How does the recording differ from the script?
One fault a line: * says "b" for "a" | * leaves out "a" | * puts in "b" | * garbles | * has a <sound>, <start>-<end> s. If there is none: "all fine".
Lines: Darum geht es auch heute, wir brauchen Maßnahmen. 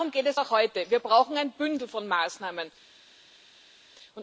* puts in "ein Bündel von"